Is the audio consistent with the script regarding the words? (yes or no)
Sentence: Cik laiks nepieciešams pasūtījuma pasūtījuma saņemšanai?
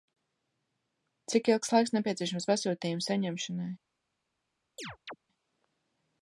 no